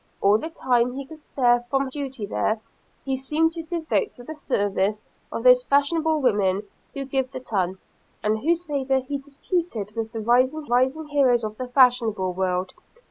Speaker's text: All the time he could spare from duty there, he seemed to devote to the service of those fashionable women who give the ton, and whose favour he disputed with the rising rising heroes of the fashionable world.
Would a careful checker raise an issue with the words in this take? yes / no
no